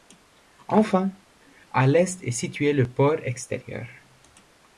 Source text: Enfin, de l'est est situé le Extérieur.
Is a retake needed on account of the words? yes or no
yes